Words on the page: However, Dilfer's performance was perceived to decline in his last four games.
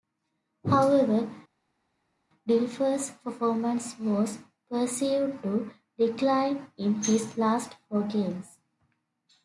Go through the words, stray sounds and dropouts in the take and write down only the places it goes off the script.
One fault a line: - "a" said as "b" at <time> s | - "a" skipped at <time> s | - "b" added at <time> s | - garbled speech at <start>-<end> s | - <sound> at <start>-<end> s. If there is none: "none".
none